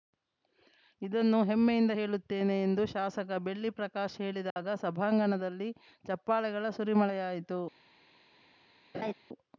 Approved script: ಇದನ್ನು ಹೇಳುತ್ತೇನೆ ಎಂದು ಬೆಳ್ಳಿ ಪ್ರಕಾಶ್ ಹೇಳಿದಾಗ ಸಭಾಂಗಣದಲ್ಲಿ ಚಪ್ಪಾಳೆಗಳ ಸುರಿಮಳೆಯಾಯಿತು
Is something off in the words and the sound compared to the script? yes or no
yes